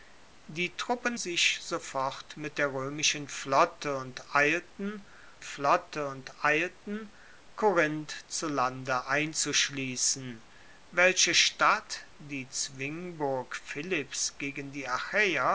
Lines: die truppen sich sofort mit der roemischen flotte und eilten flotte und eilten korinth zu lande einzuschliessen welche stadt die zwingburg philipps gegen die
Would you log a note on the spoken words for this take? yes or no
no